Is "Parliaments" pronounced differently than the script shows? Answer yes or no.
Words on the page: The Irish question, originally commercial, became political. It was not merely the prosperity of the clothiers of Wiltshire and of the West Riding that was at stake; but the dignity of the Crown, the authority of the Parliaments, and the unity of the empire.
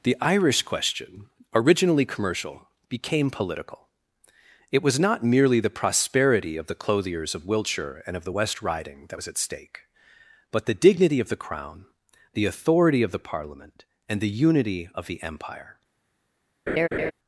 yes